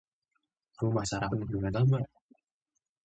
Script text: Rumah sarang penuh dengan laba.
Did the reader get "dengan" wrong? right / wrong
right